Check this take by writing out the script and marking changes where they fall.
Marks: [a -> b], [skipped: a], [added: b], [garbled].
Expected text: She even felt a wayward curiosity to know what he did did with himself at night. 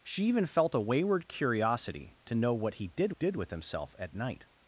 She even felt a wayward curiosity to know what he did did with himself at night.